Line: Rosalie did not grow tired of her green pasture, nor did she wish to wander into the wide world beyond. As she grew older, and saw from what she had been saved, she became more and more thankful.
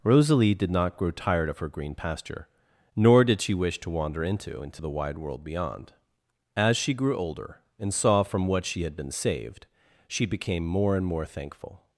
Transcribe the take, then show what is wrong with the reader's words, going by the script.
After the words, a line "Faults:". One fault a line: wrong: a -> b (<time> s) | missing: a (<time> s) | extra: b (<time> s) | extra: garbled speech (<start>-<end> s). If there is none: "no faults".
Rosalie did not grow tired of her green pasture, nor did she wish to wander into into the wide world beyond. As she grew older, and saw from what she had been saved, she became more and more thankful.
Faults:
extra: into (4.6 s)